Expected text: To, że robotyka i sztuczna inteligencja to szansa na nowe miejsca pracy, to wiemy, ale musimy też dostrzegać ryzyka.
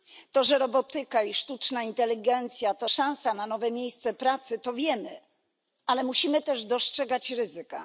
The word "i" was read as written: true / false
true